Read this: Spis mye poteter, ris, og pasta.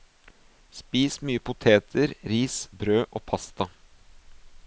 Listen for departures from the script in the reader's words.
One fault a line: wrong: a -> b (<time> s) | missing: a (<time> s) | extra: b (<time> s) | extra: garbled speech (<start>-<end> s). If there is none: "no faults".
extra: brød (2.8 s)